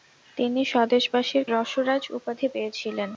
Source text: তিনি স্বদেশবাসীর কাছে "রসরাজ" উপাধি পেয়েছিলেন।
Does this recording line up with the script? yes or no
no